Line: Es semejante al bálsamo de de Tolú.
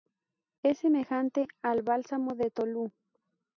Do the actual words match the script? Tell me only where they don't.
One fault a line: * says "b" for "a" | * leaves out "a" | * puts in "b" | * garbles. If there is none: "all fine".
* leaves out "de"